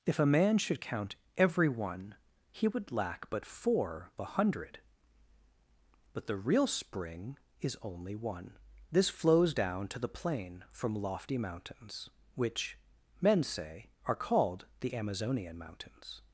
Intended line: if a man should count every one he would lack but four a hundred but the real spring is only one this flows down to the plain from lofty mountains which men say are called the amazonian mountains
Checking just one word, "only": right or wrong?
right